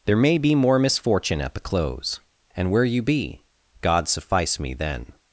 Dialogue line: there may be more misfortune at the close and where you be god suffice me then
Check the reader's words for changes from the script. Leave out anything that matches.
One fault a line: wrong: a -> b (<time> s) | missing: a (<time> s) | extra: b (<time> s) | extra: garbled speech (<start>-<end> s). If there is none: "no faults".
no faults